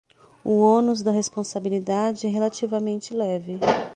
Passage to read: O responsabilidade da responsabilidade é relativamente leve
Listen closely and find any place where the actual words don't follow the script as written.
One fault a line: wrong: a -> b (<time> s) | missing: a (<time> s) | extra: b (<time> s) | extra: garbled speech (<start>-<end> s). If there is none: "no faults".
wrong: responsabilidade -> ônus (0.6 s)